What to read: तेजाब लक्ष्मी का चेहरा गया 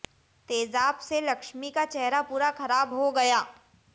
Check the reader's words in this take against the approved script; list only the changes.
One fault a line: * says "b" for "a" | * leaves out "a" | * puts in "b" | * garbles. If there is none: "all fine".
* puts in "से"
* puts in "पूरा खराब हो"